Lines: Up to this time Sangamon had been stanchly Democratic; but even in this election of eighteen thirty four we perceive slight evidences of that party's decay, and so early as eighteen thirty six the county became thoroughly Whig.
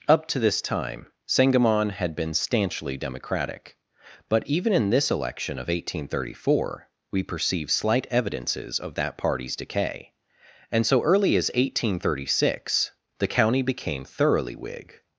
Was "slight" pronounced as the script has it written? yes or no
yes